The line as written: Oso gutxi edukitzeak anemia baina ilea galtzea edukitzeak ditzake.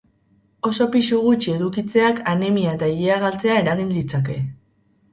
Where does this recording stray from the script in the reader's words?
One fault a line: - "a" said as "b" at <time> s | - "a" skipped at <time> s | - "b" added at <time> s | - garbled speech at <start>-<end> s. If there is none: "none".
- "pisu" added at 0.9 s
- "baina" said as "eta" at 2.8 s
- "edukitzeak" said as "eragin" at 3.7 s